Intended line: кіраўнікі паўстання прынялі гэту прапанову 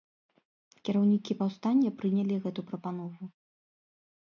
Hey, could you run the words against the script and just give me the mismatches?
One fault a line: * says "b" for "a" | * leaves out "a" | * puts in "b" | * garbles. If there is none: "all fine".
all fine